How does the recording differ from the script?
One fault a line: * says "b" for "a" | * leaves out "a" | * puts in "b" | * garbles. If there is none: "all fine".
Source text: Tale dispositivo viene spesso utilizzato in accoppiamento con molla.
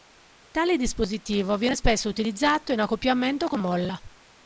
all fine